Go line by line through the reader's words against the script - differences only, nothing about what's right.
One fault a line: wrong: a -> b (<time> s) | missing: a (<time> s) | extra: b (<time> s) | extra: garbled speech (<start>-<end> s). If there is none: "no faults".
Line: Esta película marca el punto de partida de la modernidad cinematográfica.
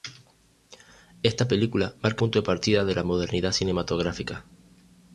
missing: el (2.2 s)